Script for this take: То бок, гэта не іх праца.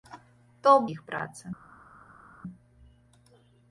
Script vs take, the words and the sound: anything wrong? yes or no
yes